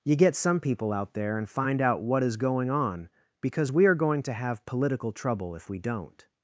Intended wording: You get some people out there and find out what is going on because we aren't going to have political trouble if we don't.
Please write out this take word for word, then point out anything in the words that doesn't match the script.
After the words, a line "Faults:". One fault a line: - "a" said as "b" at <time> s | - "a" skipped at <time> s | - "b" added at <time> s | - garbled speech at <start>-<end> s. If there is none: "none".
You get some people out there and find out what is going on because we are going to have political trouble if we don't.
Faults:
- "aren't" said as "are" at 3.9 s